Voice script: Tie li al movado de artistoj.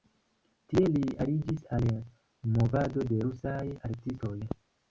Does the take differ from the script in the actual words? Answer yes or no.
yes